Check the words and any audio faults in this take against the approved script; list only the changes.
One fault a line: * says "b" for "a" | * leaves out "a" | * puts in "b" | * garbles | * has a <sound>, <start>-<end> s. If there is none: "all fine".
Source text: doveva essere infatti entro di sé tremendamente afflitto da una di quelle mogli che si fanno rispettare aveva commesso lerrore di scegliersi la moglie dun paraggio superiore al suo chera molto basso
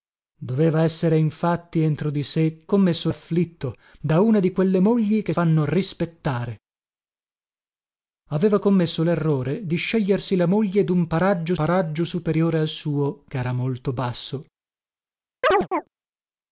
* says "commesso" for "tremendamente"
* leaves out "si"
* puts in "paraggio"
* has a chirp, 15.4-15.9 s